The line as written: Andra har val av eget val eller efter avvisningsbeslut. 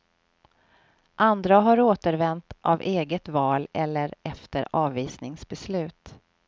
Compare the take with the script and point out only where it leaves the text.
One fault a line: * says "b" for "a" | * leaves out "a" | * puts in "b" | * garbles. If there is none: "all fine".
* says "återvänt" for "val"